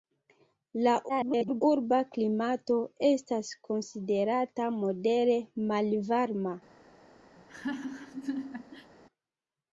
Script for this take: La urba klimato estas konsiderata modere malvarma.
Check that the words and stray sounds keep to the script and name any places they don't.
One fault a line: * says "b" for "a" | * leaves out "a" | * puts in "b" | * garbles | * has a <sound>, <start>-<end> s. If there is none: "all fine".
* garbles
* has a laugh, 7.4-8.9 s